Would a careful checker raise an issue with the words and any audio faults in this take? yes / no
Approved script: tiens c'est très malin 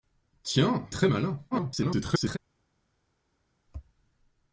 yes